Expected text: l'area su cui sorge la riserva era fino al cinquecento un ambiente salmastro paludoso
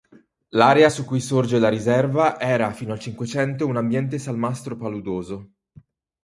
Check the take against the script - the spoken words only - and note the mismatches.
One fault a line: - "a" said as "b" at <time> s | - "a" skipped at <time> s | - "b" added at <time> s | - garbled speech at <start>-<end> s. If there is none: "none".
none